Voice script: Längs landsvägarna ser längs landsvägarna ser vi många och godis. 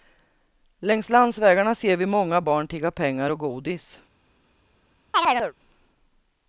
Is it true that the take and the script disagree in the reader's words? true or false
true